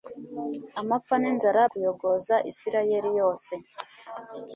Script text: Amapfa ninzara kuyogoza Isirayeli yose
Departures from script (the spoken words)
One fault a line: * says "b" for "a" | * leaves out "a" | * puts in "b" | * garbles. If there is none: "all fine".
all fine